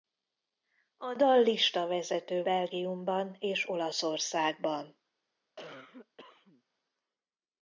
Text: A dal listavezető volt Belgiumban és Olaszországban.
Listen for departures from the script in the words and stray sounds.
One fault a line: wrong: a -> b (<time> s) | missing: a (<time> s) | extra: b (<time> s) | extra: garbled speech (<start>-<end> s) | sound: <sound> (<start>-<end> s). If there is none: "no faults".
missing: volt (2.4 s)
sound: cough (5.6-6.6 s)